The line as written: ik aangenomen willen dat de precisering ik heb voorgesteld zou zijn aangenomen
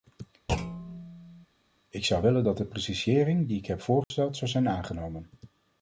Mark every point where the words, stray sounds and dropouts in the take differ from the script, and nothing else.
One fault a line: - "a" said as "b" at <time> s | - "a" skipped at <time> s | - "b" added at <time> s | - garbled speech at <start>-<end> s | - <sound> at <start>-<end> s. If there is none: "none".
- thud at 0.5-1.5 s
- "aangenomen" said as "zou" at 2.0 s
- "die" added at 3.5 s
- dropout at 4.0-4.1 s